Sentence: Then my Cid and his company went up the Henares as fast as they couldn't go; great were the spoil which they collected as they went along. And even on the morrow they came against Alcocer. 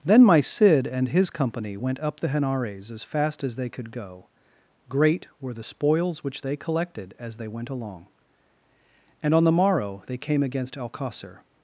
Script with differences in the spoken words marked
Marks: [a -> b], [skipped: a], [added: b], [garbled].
Then my Cid and his company went up the Henares as fast as they [couldn't -> could] go; great were the [spoil -> spoils] which they collected as they went along. And [skipped: even] on the morrow they came against Alcocer.